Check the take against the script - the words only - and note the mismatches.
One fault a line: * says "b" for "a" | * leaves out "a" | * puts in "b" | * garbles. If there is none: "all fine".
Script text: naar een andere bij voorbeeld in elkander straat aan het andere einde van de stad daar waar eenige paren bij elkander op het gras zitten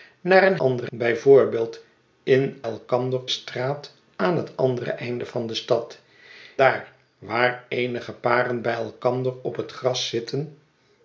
all fine